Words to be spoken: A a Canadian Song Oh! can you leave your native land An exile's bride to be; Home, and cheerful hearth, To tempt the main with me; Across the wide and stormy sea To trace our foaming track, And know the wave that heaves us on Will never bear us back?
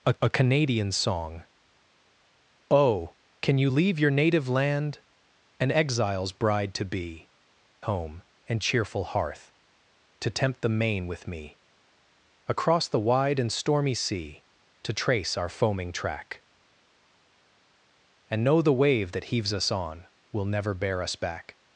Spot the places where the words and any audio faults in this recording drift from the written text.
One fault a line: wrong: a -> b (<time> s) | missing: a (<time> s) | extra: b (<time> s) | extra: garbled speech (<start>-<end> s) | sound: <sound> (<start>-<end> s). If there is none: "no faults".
no faults